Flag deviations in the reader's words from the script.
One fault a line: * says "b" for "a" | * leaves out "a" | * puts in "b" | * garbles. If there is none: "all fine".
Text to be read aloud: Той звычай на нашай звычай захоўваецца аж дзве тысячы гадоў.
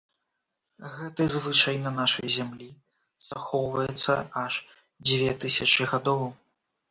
* says "Гэты" for "Той"
* says "зямлі" for "звычай"